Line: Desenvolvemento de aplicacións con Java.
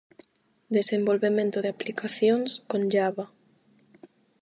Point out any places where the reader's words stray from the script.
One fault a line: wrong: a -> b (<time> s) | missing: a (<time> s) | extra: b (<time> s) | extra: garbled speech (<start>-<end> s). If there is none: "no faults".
no faults